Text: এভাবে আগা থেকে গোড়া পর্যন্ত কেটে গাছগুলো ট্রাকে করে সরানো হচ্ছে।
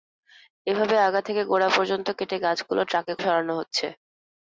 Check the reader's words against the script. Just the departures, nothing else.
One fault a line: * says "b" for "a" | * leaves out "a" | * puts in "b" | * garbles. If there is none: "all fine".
* leaves out "করে"